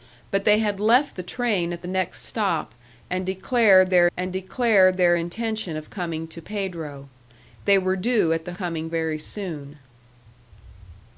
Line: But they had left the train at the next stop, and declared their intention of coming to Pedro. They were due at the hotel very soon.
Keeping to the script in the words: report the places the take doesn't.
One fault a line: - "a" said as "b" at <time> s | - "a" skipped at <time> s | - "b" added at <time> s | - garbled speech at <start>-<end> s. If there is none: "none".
- "and declared their" added at 4.2 s
- "hotel" said as "coming" at 8.5 s